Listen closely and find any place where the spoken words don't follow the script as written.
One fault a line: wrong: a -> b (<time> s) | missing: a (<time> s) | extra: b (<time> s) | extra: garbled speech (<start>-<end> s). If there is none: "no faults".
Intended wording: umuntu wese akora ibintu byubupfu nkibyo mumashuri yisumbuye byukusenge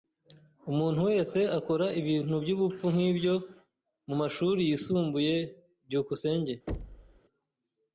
no faults